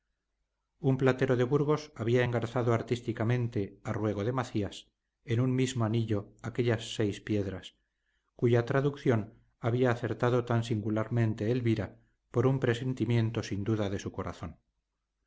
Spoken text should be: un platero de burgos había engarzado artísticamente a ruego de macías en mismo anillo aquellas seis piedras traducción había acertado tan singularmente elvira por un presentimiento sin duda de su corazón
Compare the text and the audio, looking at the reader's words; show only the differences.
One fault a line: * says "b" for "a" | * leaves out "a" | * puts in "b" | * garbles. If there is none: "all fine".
* puts in "un"
* puts in "cuya"